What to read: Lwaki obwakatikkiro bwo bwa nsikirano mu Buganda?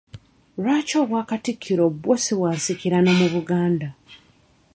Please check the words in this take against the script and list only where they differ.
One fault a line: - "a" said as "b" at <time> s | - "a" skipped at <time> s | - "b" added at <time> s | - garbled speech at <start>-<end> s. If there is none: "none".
- "si" added at 2.2 s